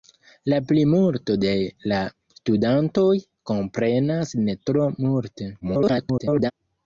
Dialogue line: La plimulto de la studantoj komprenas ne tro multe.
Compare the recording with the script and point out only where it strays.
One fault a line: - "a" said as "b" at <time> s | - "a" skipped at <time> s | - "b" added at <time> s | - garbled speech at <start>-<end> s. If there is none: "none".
- garbled speech at 5.6-6.5 s